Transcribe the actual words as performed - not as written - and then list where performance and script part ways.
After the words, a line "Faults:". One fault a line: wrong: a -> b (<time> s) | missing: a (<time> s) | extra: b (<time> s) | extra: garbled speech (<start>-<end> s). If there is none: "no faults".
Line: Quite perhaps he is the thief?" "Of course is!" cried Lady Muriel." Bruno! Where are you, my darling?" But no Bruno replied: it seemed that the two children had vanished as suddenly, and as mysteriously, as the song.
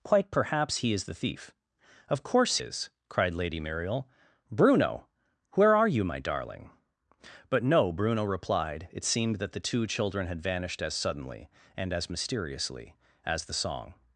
Quite perhaps he is the thief?" "Of course is!" cried Lady Muriel." Bruno! Where are you, my darling?" But no Bruno replied: it seemed that the two children had vanished as suddenly, and as mysteriously, as the song.
Faults:
no faults